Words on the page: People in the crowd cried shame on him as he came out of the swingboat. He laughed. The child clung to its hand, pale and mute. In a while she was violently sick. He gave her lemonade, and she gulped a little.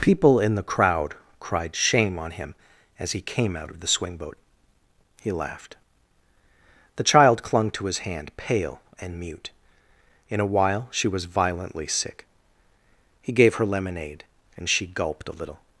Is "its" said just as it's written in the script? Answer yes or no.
no